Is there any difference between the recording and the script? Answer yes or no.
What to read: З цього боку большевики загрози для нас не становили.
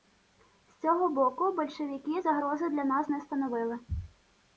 no